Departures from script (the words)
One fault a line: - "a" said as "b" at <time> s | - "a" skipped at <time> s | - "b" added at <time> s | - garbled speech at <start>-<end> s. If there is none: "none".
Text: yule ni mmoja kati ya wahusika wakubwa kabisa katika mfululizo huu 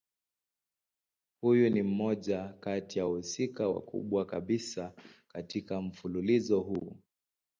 - "yule" said as "huyu" at 1.4 s